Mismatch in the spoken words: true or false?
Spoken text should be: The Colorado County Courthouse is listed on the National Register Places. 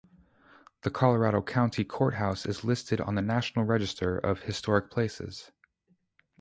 true